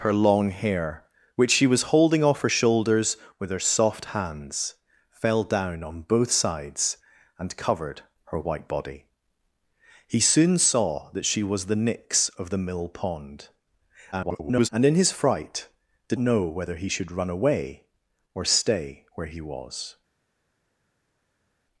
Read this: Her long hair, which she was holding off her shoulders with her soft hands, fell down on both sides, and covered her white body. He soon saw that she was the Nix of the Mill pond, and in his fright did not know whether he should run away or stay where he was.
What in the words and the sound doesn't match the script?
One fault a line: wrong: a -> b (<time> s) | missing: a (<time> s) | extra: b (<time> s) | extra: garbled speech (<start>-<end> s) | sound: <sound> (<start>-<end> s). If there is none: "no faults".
extra: garbled speech (14.1-14.7 s)
missing: not (16.2 s)